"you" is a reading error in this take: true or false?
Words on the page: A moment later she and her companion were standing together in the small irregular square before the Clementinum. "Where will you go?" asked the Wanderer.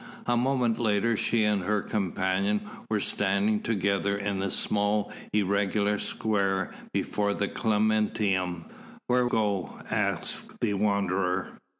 true